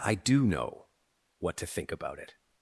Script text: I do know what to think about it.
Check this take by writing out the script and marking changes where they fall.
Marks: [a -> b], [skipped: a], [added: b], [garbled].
I do know what to think about it.